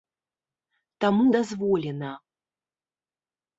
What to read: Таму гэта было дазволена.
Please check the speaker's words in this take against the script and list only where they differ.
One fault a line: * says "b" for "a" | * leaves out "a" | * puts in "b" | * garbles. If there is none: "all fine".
* leaves out "гэта было"